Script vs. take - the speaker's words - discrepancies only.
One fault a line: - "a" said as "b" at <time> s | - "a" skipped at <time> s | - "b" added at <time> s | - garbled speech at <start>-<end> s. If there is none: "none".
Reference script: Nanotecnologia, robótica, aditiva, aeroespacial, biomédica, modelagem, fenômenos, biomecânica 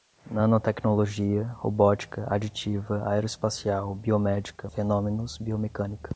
- "modelagem" skipped at 4.7 s